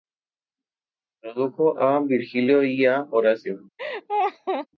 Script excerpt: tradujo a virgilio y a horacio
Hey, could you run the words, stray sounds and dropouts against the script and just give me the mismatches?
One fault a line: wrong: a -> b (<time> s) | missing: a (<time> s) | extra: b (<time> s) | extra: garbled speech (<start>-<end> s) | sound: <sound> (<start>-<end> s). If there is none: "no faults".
sound: laugh (3.8-4.7 s)